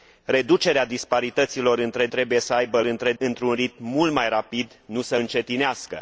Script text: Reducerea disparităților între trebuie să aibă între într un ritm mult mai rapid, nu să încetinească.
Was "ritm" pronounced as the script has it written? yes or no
yes